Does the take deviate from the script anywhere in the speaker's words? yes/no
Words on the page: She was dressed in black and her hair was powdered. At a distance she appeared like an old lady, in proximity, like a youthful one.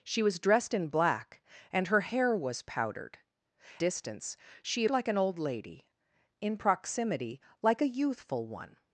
yes